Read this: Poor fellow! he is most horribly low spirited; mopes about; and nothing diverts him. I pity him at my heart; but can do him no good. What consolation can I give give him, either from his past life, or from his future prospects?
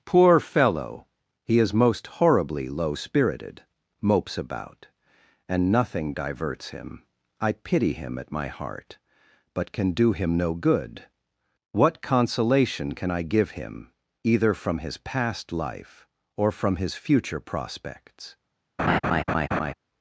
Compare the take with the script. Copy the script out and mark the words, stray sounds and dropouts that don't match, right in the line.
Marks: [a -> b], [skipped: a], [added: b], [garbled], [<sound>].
Poor fellow! he is most horribly low spirited; mopes about; and nothing diverts him. I pity him at my heart; but can do him no good. What consolation can I give [skipped: give] him, either from his past life, or from his future prospects? [laugh]